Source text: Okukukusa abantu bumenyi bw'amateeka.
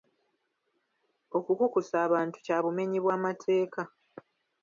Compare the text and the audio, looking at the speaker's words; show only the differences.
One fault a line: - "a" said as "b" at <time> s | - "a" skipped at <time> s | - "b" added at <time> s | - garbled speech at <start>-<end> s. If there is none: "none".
- "kya" added at 2.4 s